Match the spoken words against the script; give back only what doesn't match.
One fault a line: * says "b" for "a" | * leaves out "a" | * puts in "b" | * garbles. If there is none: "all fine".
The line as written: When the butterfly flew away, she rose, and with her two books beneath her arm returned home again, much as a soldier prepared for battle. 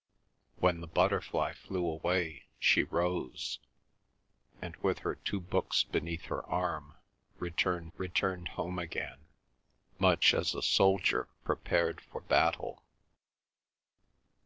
* puts in "returned"